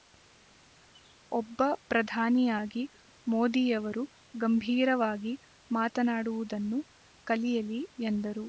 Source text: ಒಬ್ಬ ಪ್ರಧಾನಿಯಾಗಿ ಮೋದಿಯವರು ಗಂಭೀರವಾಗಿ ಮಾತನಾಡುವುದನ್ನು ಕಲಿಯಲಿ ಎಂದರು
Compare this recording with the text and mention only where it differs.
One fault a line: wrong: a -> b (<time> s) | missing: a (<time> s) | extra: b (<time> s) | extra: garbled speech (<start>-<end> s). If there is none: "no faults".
no faults